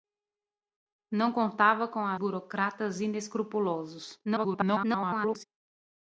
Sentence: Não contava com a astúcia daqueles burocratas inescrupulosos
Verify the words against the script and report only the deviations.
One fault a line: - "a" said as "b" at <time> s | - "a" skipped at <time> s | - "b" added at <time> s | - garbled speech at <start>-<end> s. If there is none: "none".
- "astúcia daqueles" skipped at 2.1 s
- garbled speech at 4.2-5.4 s